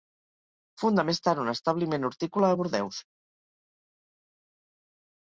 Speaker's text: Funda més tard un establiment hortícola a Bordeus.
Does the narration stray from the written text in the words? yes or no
no